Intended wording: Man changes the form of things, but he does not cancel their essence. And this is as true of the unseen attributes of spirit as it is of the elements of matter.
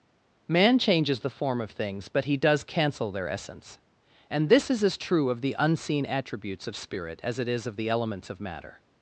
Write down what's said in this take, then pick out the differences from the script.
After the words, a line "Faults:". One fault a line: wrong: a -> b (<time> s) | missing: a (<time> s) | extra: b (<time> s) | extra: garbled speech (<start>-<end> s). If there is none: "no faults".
Man changes the form of things, but he does cancel their essence. And this is as true of the unseen attributes of spirit as it is of the elements of matter.
Faults:
missing: not (2.6 s)